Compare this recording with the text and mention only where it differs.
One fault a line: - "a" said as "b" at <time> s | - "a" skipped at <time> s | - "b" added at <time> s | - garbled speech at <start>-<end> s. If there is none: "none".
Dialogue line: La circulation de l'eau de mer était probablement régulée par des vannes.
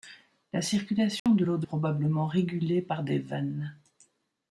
- "mer était" skipped at 1.7 s